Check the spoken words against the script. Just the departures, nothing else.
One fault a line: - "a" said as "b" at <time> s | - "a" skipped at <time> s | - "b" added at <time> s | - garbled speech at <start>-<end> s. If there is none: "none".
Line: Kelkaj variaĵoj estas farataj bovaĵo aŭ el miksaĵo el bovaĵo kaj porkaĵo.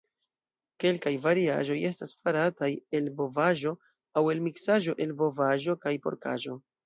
- "el" added at 3.0 s